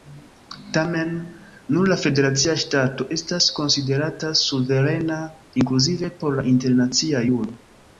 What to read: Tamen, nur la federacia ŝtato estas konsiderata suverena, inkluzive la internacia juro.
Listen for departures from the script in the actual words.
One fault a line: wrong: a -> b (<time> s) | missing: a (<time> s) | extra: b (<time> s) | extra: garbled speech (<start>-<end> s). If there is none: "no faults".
extra: por (6.2 s)